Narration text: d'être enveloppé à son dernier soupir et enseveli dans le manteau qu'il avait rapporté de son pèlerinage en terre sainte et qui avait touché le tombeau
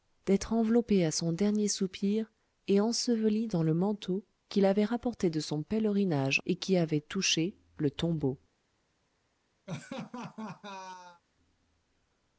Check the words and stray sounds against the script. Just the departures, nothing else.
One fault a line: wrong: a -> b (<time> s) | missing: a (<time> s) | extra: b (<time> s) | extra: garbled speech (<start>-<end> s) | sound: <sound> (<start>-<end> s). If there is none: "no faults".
missing: en terre sainte (6.4 s)
sound: laugh (9.7-11.2 s)